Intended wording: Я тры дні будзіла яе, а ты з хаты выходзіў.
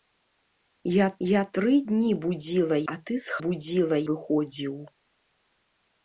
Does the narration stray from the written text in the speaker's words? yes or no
yes